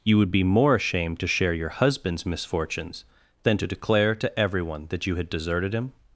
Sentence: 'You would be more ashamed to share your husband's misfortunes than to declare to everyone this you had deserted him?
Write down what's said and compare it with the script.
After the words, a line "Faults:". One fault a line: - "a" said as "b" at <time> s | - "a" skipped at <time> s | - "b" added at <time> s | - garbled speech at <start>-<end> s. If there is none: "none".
'You would be more ashamed to share your husband's misfortunes than to declare to everyone that you had deserted him?
Faults:
- "this" said as "that" at 4.9 s